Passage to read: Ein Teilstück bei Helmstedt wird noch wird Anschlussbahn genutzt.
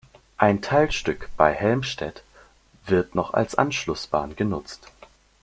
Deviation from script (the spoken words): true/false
true